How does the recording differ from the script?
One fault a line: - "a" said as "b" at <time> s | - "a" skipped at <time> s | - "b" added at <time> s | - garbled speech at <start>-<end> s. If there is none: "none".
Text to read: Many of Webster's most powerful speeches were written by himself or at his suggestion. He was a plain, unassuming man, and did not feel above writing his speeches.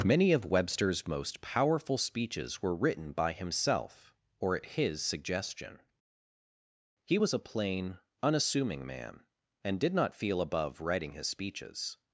none